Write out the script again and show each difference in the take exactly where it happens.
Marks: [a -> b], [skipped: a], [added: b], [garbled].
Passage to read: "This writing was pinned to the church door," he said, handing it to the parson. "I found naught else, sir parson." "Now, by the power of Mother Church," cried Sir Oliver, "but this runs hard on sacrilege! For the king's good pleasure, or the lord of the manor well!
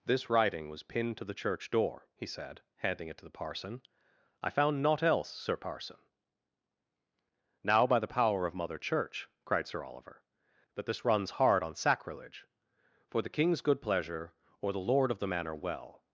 "This writing was pinned to the church door," he said, handing it to the parson. "I found naught else, sir parson." "Now, by the power of Mother Church," cried Sir Oliver, ["but -> that] this runs hard on sacrilege! For the king's good pleasure, or the lord of the manor well!